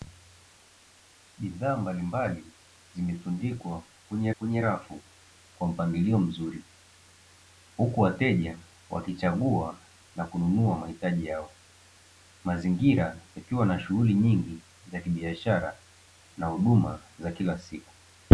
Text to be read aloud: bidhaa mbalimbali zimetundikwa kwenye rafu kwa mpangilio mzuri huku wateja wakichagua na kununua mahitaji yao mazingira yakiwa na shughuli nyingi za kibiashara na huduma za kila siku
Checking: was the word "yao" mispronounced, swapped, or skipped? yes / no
no